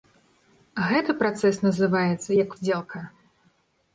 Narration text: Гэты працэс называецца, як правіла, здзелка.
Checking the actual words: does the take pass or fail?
fail